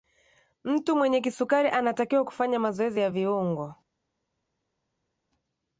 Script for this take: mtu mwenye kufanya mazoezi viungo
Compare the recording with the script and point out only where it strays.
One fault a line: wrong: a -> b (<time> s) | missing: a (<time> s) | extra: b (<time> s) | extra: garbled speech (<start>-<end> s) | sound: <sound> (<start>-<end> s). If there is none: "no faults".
extra: kisukari anatakiwa (1.2 s)
extra: ya (3.0 s)